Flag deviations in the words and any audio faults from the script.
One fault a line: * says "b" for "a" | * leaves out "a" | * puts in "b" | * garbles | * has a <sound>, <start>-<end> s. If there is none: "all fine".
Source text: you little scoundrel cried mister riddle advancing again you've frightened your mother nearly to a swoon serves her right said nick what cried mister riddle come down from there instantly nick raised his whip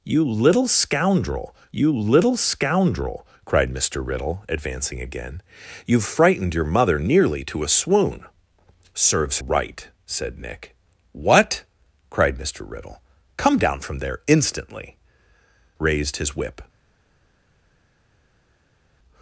* puts in "you little scoundrel"
* leaves out "her"
* leaves out "nick"